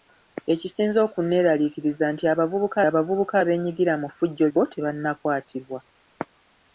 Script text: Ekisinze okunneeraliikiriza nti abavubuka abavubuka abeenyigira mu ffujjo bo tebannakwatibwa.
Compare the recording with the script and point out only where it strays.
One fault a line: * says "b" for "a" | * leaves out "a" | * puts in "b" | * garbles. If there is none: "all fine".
all fine